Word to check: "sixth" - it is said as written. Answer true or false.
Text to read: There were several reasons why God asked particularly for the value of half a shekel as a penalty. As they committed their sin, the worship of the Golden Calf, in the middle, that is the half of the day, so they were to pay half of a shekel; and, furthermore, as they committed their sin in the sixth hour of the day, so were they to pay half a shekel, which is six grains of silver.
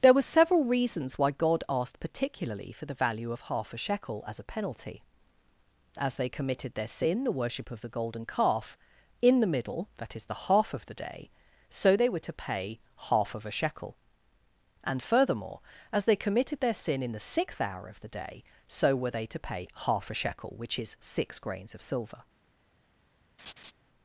true